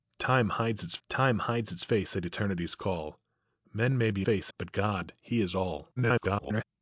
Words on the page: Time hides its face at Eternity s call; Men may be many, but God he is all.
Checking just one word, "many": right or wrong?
wrong